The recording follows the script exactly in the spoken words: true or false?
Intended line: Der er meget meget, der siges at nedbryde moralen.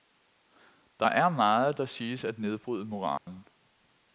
false